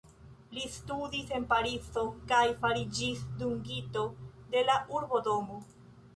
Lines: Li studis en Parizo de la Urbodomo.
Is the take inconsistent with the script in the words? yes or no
yes